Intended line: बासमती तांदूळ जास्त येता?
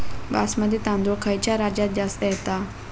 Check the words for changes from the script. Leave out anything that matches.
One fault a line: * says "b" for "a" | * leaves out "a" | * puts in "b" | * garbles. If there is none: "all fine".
* puts in "खयच्या राज्यात"